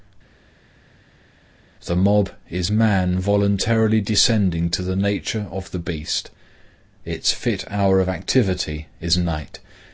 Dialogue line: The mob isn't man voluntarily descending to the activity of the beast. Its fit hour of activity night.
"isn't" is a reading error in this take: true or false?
true